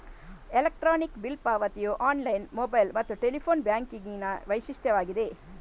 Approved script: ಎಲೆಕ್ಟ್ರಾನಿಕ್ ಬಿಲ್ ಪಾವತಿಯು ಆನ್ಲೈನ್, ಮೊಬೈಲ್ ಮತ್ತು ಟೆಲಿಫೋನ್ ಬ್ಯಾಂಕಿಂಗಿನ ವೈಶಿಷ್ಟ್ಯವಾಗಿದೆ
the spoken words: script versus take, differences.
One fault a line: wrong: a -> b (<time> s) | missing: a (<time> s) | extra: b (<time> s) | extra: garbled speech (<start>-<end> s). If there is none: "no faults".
no faults